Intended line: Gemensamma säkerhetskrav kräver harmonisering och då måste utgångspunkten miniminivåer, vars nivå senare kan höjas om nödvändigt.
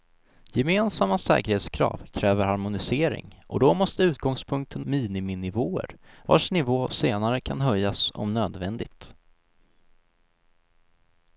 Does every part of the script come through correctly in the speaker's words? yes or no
yes